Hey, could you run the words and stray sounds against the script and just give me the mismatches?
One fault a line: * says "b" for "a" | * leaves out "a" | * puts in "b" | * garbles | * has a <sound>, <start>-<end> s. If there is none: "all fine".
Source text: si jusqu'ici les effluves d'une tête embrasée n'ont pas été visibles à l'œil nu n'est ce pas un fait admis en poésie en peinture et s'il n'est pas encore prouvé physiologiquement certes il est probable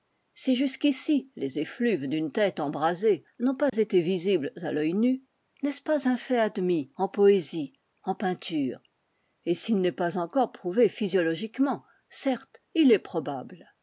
* has a dropout, 3.7-3.7 s